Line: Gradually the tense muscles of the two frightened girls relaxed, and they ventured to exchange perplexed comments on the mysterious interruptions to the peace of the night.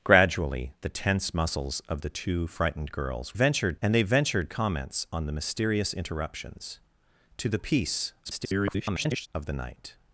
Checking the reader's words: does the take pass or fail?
fail